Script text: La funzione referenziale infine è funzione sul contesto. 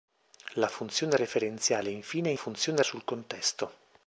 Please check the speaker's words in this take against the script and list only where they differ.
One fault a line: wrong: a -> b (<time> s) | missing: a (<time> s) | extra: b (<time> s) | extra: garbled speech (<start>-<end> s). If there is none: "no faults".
no faults